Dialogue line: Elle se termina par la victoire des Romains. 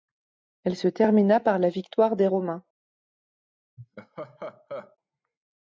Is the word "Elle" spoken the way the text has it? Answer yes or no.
yes